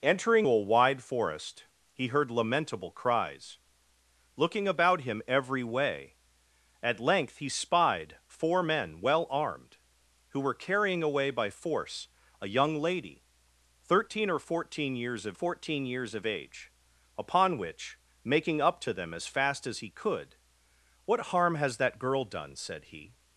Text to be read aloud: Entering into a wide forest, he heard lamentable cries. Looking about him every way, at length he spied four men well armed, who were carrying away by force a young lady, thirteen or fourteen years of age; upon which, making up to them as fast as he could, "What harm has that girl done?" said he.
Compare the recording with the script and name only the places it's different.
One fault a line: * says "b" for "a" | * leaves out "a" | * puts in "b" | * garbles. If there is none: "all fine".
* leaves out "into"
* puts in "fourteen years of"